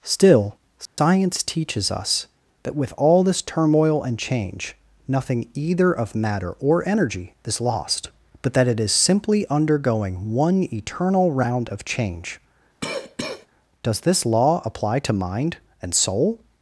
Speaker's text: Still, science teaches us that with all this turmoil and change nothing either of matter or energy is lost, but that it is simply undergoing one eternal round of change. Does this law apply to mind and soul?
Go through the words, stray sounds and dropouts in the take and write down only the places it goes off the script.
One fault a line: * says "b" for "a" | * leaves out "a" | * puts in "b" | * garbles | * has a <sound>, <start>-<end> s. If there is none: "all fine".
* has a dropout, 0.9-1.0 s
* has a cough, 12.8-13.5 s